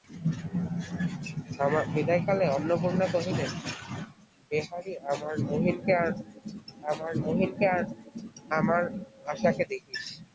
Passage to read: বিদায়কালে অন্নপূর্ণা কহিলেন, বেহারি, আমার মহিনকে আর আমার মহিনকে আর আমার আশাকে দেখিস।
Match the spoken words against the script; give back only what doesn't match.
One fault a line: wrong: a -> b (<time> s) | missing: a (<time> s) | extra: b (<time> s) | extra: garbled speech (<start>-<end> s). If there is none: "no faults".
no faults